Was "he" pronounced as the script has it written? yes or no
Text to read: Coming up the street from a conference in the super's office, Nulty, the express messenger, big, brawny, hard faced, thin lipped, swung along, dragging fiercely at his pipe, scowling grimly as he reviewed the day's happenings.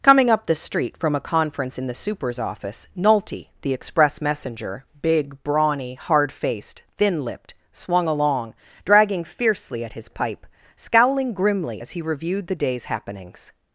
yes